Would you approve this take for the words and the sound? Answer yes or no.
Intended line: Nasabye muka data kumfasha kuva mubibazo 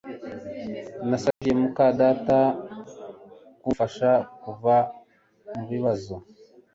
no